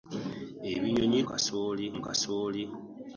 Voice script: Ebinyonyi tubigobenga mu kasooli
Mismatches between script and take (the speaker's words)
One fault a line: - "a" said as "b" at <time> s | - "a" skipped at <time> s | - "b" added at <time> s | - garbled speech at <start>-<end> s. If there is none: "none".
- "tubigobenga" said as "kasooli" at 1.3 s